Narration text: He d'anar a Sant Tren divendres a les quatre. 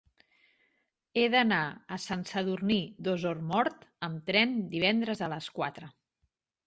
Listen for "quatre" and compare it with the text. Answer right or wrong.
right